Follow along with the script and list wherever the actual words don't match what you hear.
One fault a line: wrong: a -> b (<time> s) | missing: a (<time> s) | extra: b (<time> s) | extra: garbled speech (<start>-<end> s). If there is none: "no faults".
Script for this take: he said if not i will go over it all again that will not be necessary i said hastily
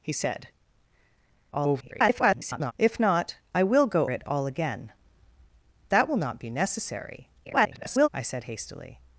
extra: garbled speech (1.5-2.7 s)
missing: over (4.1 s)
extra: garbled speech (7.4-8.1 s)